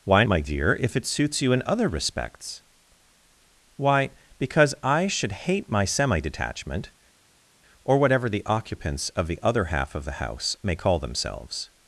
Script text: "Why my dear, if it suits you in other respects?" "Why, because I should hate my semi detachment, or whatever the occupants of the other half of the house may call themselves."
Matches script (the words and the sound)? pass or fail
pass